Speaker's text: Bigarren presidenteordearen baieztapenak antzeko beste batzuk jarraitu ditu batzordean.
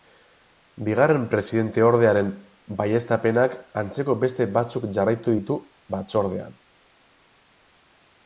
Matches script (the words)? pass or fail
pass